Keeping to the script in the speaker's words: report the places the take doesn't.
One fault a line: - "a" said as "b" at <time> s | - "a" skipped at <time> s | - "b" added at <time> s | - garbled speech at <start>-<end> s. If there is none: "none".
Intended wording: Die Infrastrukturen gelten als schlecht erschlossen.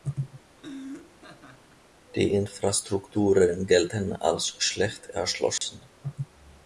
none